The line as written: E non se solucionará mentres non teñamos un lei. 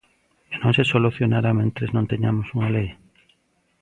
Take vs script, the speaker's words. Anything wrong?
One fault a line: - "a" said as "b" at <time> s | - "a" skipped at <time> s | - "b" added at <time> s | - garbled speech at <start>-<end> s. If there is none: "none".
- "un" said as "unha" at 2.6 s